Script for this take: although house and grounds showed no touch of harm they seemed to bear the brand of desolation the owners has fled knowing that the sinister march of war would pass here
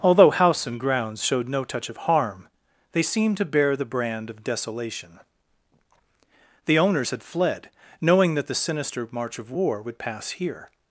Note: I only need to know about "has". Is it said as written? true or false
false